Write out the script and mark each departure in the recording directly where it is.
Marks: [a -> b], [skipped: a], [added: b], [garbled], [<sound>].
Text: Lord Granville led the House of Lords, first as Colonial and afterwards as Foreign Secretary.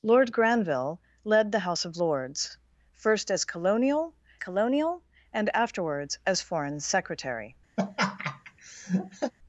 Lord Granville led the House of Lords, first as Colonial [added: Colonial] and afterwards as Foreign Secretary. [laugh]